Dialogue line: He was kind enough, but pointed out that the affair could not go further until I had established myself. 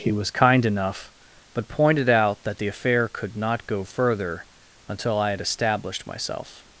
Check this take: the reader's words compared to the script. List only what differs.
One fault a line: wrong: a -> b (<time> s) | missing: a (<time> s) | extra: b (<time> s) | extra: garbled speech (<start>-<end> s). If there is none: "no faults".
no faults